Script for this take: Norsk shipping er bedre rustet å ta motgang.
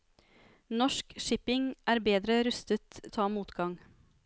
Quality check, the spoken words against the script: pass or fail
pass